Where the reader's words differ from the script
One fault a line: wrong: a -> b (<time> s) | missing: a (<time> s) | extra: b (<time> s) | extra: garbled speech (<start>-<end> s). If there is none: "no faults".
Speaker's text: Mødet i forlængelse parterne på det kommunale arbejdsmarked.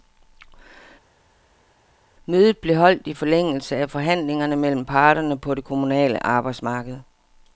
extra: blev holdt (2.6 s)
extra: af forhandlingerne mellem (3.8 s)